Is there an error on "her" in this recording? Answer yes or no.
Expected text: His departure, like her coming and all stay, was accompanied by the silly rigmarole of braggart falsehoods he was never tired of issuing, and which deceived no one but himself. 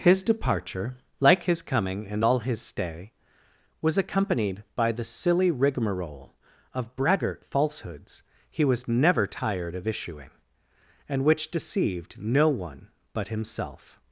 yes